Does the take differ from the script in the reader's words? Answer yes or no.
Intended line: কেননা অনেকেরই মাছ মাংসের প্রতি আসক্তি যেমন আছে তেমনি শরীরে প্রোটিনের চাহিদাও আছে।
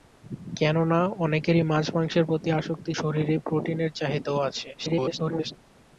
yes